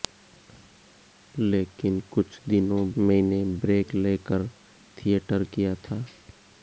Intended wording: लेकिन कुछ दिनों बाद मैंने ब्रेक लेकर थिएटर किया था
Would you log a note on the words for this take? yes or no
yes